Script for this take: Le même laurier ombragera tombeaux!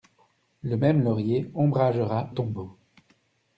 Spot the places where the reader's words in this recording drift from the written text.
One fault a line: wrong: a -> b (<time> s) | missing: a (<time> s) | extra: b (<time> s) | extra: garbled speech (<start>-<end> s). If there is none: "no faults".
no faults